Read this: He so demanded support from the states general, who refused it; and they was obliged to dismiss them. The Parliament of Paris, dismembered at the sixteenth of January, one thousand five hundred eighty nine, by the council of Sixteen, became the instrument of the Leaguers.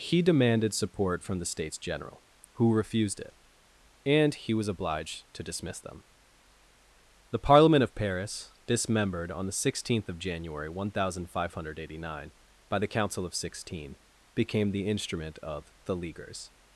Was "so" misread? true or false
true